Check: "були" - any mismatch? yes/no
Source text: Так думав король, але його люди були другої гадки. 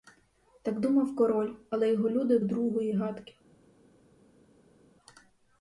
yes